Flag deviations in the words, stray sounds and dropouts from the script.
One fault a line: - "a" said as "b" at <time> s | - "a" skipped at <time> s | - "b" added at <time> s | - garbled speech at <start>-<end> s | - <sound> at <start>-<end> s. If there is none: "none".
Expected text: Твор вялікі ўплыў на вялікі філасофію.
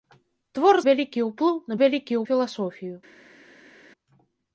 none